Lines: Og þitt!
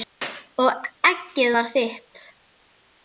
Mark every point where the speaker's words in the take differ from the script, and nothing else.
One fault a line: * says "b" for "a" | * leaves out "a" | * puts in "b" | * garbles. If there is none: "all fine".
* puts in "eggið var"